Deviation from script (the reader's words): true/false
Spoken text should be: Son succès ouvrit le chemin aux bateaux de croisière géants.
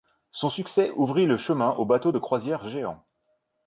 false